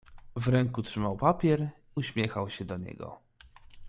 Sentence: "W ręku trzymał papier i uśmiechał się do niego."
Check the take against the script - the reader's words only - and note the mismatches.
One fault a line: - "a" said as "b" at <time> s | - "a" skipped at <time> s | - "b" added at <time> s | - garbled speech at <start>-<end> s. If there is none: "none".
- "i" skipped at 1.7 s